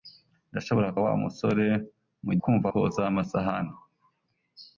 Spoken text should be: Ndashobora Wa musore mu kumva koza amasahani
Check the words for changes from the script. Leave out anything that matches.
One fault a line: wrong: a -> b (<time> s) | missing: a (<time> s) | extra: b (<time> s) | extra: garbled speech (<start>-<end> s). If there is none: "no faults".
no faults